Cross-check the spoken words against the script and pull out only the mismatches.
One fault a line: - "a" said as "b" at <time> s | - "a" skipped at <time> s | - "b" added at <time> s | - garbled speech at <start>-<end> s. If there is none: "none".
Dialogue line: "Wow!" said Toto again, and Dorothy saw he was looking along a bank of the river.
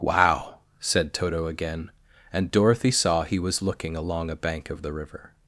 none